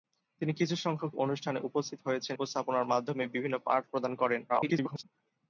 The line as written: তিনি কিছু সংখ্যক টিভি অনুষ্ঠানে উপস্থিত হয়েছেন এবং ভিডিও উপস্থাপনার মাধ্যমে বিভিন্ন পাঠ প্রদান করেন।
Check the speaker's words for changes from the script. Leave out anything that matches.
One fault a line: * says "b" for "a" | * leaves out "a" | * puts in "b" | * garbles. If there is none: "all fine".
* leaves out "টিভি"
* leaves out "এবং ভিডিও"
* garbles